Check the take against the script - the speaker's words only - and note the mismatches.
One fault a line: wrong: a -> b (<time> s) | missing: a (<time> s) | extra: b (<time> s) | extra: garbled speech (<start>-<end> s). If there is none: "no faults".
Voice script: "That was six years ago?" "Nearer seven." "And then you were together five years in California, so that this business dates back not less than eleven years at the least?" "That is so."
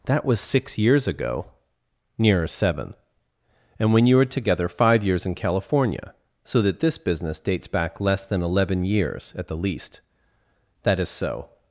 wrong: then -> when (3.9 s)
missing: not (8.0 s)